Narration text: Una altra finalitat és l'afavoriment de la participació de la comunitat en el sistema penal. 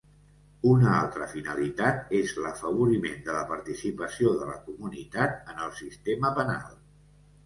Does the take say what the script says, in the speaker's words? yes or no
yes